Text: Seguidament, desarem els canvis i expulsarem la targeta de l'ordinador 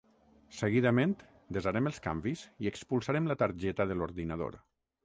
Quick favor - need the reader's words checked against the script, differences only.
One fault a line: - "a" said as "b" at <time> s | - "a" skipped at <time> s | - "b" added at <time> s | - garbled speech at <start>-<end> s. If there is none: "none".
none